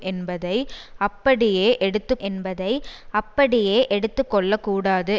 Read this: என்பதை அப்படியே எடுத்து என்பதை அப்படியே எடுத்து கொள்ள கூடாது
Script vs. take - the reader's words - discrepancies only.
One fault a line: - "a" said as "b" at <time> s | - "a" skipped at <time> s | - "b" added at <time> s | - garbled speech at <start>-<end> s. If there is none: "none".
none